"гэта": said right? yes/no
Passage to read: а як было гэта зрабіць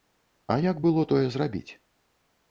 no